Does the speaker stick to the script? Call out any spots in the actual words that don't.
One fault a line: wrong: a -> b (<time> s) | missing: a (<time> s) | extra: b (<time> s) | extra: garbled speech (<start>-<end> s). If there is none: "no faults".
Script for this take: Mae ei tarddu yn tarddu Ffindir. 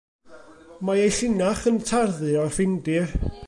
wrong: tarddu -> llinach (1.1 s)
extra: o'r (2.4 s)